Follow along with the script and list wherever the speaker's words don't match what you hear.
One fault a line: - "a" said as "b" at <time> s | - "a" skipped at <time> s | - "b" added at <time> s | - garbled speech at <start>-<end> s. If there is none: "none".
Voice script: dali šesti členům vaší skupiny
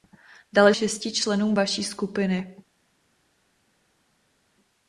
none